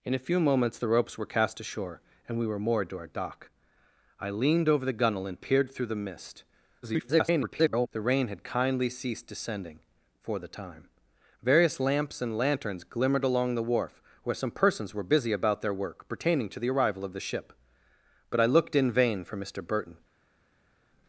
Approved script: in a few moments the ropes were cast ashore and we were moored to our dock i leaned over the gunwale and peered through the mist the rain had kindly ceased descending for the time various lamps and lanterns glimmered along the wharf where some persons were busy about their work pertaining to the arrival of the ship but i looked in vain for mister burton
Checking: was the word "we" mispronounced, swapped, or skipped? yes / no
no